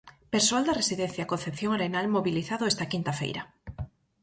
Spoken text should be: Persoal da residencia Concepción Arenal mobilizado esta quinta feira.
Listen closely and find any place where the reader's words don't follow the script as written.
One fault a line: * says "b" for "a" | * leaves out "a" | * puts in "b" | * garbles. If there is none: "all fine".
all fine